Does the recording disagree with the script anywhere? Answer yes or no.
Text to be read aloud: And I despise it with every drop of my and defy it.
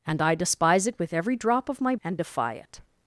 no